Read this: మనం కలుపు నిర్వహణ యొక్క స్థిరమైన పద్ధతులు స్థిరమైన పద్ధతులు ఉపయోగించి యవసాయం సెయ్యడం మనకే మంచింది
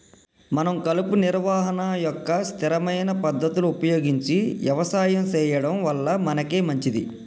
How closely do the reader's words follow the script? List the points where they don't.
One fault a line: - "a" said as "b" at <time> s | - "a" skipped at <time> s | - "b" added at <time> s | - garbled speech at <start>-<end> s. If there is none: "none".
- "స్థిరమైన పద్ధతులు" skipped at 3.7 s
- "వల్ల" added at 5.8 s